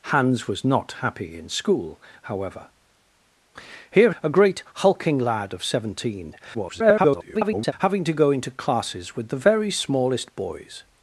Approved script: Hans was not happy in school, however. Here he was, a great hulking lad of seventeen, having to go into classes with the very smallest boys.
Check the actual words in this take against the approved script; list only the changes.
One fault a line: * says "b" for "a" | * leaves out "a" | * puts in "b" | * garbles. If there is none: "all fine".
* leaves out "he was"
* garbles